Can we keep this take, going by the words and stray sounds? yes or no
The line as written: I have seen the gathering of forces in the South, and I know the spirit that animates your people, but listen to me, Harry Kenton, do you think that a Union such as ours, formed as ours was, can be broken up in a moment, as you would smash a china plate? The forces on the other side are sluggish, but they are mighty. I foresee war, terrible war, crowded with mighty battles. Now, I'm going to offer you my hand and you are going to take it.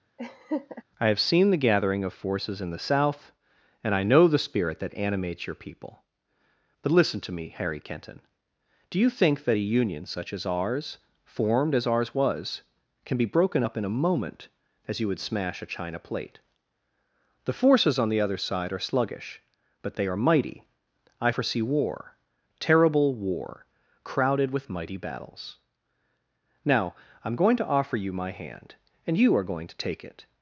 no